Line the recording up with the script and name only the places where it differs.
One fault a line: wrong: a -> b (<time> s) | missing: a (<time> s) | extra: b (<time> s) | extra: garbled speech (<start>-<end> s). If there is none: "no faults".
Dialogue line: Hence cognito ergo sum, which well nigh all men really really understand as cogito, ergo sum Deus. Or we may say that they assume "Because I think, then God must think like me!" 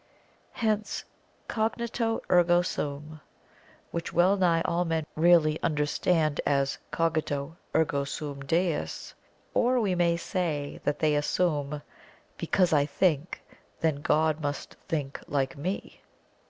missing: really (5.6 s)